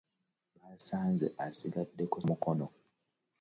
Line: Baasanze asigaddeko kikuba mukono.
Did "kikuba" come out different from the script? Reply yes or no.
yes